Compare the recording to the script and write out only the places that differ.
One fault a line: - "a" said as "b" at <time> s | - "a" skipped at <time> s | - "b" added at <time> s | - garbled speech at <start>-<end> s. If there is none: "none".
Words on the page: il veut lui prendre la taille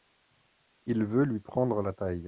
none